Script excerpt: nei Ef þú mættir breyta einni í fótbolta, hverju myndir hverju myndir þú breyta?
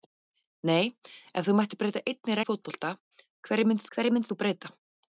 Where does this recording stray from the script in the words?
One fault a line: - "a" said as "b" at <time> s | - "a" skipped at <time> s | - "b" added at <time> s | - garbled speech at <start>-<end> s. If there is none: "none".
none